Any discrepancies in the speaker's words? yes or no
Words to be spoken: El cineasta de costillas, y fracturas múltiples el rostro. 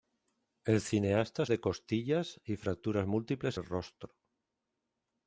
no